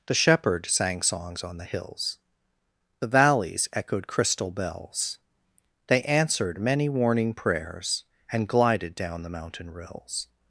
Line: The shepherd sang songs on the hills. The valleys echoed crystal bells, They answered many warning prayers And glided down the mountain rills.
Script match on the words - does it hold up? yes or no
yes